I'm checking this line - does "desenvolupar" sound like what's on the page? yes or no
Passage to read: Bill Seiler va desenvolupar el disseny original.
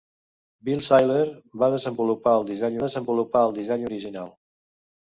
yes